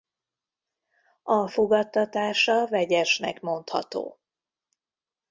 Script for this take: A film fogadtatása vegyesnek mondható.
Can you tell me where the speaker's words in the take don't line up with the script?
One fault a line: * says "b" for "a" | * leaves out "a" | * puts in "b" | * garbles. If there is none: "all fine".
* leaves out "film"